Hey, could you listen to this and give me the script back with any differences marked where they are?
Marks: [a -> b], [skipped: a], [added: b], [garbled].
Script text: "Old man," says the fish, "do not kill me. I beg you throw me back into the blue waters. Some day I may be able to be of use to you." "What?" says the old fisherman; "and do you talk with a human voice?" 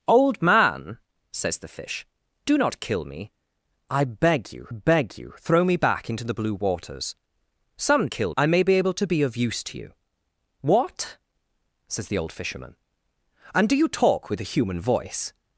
"Old man," says the fish, "do not kill me. I beg you [added: beg you] throw me back into the blue waters. Some [day -> kill] I may be able to be of use to you." "What?" says the old fisherman; "and do you talk with a human voice?"